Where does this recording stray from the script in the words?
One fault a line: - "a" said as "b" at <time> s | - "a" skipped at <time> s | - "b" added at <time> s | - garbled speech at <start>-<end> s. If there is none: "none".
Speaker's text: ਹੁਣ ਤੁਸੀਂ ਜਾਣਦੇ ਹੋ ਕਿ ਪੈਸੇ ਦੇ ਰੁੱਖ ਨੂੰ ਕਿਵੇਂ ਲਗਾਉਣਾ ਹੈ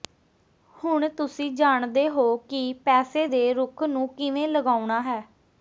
none